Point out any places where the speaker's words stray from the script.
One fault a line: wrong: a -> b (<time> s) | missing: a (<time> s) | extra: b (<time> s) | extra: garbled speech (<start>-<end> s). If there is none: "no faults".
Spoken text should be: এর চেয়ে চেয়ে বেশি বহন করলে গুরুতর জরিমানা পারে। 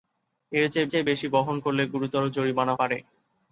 no faults